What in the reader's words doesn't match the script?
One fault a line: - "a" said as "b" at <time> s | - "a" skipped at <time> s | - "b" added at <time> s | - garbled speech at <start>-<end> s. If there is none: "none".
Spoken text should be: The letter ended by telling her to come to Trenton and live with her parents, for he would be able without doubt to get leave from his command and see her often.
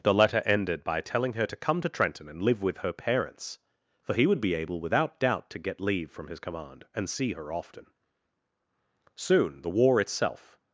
- "Soon the war itself" added at 9.2 s